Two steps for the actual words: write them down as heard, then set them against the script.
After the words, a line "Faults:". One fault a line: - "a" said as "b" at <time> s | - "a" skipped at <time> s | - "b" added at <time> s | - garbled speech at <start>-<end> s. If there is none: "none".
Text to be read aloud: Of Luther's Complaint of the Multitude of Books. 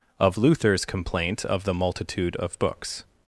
Of Luther's Complaint of the Multitude of Books.
Faults:
none